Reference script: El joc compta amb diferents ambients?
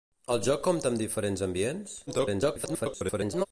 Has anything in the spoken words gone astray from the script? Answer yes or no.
yes